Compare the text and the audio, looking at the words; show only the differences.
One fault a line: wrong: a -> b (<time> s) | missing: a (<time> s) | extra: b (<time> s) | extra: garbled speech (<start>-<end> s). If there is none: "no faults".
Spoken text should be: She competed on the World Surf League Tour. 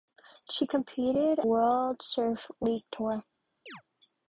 missing: on the (1.4 s)